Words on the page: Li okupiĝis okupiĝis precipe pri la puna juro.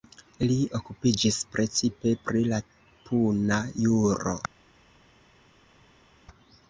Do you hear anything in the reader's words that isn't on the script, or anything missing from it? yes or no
yes